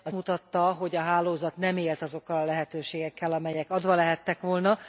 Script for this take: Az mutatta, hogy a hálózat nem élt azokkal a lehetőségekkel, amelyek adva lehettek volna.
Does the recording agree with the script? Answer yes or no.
yes